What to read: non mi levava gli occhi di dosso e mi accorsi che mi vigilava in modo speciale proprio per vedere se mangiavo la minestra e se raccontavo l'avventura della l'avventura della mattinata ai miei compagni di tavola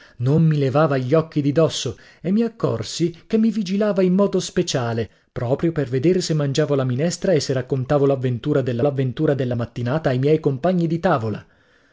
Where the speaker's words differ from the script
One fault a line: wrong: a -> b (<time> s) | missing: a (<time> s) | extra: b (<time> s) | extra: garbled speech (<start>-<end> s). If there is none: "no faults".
no faults